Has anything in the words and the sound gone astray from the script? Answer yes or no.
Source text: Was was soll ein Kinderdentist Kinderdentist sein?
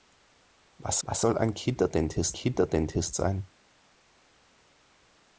no